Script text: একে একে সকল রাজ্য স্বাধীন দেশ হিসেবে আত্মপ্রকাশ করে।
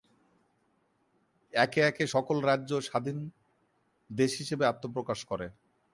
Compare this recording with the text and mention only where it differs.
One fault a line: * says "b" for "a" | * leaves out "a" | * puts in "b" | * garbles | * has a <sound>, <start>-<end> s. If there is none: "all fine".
all fine